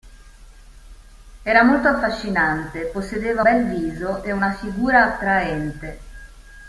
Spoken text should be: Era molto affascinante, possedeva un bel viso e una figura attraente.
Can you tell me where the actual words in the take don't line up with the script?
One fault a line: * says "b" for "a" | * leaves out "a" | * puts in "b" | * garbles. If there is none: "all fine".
* leaves out "un"